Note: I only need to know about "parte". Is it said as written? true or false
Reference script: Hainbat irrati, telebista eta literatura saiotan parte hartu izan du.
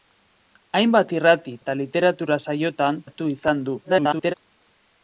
false